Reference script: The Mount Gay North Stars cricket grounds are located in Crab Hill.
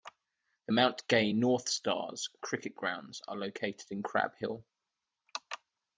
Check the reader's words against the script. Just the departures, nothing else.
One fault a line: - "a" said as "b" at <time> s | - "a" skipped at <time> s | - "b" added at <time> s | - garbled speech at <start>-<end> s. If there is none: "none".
none